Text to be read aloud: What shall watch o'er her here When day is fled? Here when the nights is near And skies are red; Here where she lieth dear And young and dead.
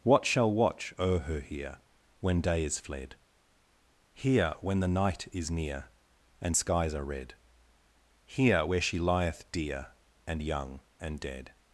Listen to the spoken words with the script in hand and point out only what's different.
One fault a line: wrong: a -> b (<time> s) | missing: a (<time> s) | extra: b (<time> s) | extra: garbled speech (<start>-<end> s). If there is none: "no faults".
wrong: nights -> night (4.9 s)